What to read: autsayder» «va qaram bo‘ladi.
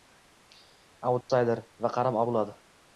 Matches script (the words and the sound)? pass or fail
fail